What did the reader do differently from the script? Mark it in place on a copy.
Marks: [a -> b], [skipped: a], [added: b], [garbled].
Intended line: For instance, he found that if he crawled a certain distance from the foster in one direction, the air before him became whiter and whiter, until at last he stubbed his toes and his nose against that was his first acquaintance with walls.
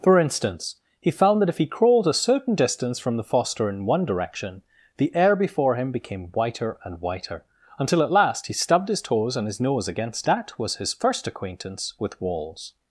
For instance, he found that if he crawled a certain distance from the foster in one direction, the air before him became whiter and whiter, until at last he stubbed his toes and his nose against that was his first acquaintance with walls.